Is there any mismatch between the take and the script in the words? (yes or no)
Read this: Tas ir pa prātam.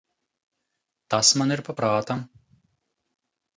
yes